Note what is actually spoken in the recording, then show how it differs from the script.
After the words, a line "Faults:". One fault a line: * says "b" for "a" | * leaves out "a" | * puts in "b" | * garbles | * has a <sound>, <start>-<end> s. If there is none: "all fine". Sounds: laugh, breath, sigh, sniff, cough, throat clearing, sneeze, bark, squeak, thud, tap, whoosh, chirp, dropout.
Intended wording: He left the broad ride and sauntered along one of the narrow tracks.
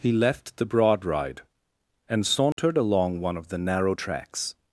He left the broad ride and sauntered along one of the narrow tracks.
Faults:
* has a dropout, 2.5-2.6 s